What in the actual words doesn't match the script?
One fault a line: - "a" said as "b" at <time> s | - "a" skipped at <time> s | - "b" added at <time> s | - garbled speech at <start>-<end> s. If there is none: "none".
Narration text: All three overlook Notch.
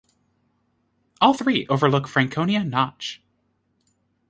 - "Franconia" added at 2.1 s